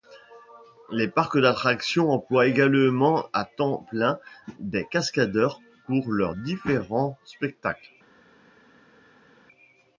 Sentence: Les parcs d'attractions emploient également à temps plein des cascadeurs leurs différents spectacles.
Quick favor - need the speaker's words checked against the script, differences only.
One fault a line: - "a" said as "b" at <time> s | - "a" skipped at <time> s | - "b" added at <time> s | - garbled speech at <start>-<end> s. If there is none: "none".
- "pour" added at 5.9 s